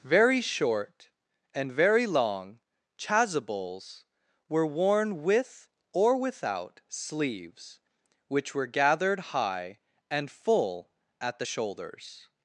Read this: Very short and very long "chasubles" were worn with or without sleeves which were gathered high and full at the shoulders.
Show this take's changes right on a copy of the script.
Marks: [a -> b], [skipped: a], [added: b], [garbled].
Very short and very long "chasubles" were worn with or without sleeves which were gathered high and full at the shoulders.